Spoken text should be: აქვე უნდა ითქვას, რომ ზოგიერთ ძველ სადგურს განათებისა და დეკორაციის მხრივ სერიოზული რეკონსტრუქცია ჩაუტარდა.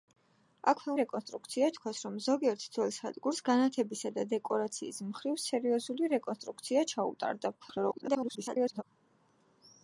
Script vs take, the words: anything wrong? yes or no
yes